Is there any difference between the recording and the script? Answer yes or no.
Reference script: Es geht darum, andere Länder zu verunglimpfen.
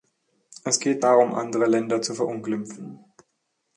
no